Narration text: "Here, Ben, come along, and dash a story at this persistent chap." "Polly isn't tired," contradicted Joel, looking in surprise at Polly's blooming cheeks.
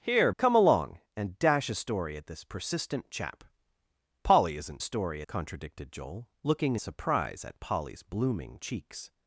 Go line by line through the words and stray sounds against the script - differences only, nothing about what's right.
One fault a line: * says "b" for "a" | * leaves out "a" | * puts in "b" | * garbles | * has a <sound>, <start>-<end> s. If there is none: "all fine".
* leaves out "Ben"
* says "story" for "tired"
* leaves out "in"